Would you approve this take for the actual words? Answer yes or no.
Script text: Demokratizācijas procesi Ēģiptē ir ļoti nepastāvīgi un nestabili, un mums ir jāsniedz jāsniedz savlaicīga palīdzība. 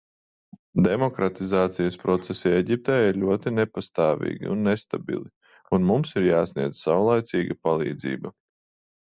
no